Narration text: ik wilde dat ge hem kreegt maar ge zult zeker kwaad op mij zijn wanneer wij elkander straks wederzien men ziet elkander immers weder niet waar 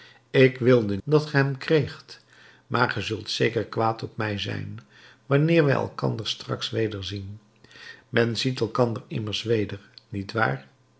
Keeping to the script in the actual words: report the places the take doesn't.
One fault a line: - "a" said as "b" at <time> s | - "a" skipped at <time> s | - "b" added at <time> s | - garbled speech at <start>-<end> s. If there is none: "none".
none